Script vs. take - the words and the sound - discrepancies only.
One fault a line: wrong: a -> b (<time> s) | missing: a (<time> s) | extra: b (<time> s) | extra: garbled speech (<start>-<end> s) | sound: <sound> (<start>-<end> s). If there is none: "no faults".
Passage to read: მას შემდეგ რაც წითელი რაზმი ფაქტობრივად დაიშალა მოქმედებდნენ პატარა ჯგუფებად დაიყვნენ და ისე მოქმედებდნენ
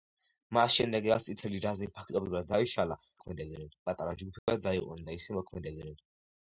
sound: dropout (4.4-4.5 s)